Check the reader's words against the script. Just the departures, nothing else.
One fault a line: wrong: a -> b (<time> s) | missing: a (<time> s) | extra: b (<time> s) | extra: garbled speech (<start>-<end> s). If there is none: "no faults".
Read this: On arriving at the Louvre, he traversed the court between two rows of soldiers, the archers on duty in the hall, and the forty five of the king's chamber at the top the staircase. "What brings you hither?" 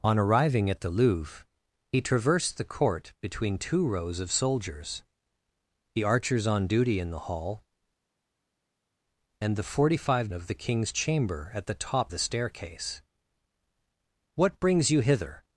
no faults